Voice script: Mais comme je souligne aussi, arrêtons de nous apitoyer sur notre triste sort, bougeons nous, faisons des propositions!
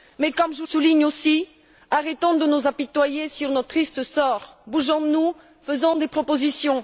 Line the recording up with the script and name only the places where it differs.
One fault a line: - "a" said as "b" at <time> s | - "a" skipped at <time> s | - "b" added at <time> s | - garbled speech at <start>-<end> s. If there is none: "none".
none